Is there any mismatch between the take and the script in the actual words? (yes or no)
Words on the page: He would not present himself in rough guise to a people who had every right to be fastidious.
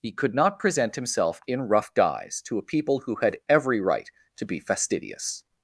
yes